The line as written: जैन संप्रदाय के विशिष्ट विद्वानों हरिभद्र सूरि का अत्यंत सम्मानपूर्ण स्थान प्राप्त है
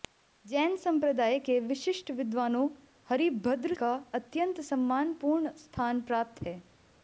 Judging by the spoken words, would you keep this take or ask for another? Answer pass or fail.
fail